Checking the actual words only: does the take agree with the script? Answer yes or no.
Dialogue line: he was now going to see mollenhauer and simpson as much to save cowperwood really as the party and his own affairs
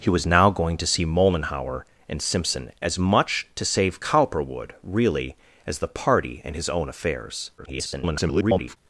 no